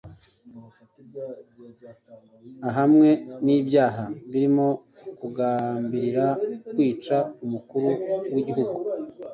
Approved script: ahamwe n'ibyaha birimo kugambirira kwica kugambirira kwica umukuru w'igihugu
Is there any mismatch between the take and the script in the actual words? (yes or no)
yes